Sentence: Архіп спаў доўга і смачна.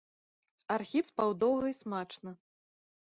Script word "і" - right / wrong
right